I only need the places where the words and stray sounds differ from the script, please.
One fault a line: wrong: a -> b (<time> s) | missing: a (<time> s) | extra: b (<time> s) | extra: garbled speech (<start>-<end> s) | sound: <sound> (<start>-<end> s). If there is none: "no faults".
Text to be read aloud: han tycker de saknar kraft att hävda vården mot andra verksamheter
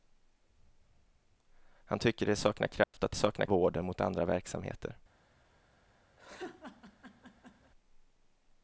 sound: dropout (2.8-2.9 s)
wrong: hävda -> saknar (3.1 s)
sound: laugh (6.2-7.7 s)